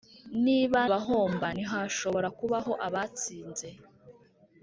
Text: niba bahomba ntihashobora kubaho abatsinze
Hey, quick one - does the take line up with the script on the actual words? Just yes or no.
yes